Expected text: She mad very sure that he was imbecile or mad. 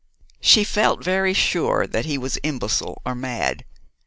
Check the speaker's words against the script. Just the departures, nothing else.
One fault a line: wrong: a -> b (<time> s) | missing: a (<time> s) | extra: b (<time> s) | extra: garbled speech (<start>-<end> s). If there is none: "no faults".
wrong: mad -> felt (0.6 s)